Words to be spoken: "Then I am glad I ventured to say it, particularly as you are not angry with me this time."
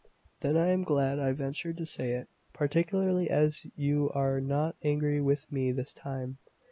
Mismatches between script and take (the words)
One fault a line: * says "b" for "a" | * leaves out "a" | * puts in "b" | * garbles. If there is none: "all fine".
all fine